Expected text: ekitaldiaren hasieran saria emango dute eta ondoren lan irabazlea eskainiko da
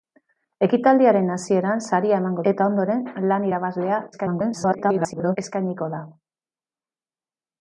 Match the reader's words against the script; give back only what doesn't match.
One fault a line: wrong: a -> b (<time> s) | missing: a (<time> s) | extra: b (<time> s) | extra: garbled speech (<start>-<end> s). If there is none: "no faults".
missing: dute (2.5 s)
extra: garbled speech (4.1-5.4 s)